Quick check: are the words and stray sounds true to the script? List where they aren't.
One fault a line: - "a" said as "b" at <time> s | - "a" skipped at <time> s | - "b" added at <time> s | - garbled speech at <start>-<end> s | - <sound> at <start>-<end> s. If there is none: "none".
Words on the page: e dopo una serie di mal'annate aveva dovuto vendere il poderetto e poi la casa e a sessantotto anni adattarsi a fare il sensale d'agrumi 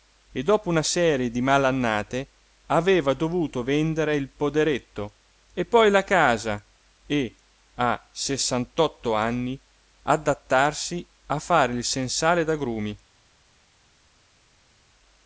none